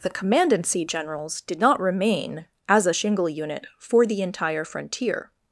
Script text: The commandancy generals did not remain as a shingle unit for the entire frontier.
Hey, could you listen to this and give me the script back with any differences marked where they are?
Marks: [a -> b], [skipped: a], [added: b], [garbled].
The commandancy generals did not remain as a shingle unit for the entire frontier.